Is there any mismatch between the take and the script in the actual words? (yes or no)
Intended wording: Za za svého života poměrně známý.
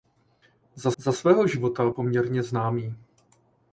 no